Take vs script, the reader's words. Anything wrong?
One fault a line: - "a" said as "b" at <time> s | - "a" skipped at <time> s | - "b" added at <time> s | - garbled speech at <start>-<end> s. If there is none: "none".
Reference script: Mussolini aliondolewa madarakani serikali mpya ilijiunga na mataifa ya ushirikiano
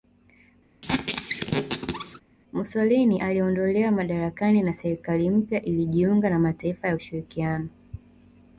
- "na" added at 4.6 s